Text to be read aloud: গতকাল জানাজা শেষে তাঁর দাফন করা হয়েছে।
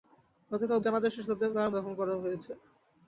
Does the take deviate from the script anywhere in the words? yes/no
no